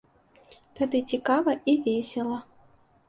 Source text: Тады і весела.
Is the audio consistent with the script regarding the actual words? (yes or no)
no